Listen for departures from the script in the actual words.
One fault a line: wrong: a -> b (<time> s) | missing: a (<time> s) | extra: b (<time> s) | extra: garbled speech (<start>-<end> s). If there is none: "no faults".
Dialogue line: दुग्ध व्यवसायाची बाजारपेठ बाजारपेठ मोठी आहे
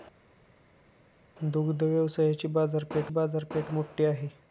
no faults